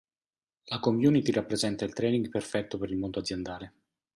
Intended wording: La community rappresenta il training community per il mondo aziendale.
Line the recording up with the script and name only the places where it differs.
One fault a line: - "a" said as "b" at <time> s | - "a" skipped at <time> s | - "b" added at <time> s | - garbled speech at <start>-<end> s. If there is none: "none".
- "community" said as "perfetto" at 2.3 s